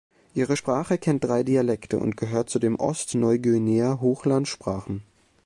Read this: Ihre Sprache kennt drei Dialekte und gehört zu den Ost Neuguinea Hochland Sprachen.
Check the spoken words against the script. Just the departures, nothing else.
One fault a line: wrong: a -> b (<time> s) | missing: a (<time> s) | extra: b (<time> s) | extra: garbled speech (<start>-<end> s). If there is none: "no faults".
no faults